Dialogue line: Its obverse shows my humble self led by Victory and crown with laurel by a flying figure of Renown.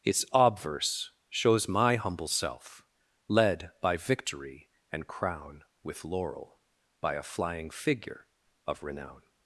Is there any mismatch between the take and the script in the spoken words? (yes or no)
no